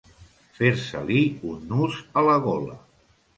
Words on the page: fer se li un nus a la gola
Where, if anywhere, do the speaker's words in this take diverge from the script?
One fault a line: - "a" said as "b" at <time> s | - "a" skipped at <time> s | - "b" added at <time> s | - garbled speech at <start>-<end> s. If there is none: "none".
none